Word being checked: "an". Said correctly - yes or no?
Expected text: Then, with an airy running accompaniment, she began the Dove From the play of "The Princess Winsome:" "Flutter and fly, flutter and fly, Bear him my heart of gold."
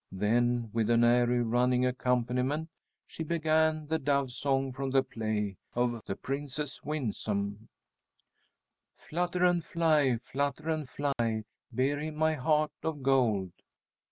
yes